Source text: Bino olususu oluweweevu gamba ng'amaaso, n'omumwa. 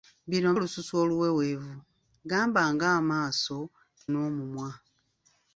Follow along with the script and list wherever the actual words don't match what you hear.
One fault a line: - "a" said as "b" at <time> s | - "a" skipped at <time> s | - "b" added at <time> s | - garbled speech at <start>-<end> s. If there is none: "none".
none